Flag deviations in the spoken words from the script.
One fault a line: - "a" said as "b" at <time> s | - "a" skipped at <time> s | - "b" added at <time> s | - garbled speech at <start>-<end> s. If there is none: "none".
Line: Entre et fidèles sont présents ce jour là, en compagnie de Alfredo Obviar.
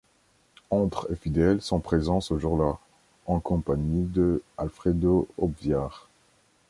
none